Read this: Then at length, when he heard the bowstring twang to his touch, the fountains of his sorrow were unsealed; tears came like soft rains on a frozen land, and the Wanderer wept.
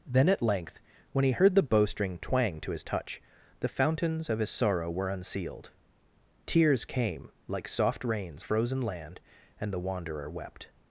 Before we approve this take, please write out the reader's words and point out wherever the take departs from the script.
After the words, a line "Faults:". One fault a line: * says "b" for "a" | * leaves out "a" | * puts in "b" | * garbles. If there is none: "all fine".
Then at length, when he heard the bowstring twang to his touch, the fountains of his sorrow were unsealed; tears came like soft rains a frozen land, and the Wanderer wept.
Faults:
* leaves out "on"